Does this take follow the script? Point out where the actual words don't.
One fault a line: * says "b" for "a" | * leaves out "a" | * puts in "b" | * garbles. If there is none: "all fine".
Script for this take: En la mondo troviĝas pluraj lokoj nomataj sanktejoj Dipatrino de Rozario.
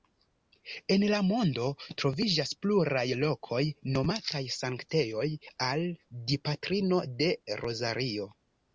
* puts in "al"